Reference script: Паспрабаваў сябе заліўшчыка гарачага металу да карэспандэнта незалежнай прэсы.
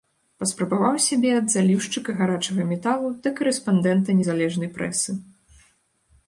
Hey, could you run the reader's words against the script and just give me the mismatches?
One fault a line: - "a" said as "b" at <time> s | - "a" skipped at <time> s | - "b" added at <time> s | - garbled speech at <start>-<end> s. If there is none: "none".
- "ад" added at 1.4 s